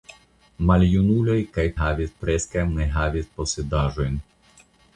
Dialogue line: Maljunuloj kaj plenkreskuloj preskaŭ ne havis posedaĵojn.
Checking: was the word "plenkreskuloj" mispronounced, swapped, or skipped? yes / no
yes